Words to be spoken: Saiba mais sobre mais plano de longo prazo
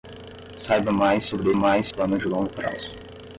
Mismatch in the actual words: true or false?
false